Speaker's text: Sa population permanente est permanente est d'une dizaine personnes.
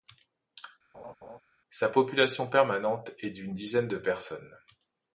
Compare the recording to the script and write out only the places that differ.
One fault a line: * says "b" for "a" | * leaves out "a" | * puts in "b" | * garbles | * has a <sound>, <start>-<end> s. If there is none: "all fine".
* has a laugh, 0.9-1.4 s
* leaves out "permanente est"
* puts in "de"